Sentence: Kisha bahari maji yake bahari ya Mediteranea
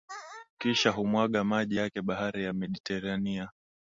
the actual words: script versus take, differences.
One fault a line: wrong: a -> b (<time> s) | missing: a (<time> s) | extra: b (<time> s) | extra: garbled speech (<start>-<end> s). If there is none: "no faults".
wrong: bahari -> humwaga (0.9 s)